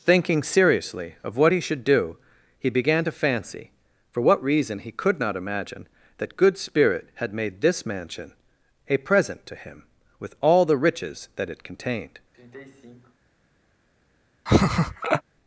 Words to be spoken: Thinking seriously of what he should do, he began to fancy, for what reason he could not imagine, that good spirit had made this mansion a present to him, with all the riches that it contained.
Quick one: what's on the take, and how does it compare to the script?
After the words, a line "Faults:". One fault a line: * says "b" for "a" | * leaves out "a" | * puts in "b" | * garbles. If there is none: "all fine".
Thinking seriously of what he should do, he began to fancy, for what reason he could not imagine, that good spirit had made this mansion a present to him, with all the riches that it contained.
Faults:
all fine